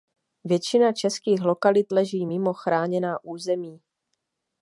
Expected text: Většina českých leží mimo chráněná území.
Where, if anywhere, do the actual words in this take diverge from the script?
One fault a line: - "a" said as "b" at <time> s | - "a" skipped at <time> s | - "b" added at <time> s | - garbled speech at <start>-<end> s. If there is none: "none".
- "lokalit" added at 1.4 s